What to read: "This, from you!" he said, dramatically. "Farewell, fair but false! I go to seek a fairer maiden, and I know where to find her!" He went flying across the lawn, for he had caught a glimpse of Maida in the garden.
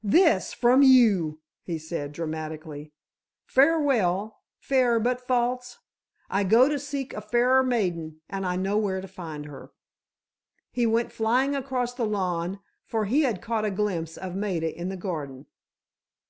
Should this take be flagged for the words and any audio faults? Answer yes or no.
no